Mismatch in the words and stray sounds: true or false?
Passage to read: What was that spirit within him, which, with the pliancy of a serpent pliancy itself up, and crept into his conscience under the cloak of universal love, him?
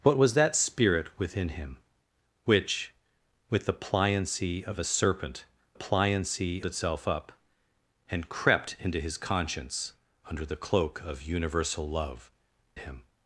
false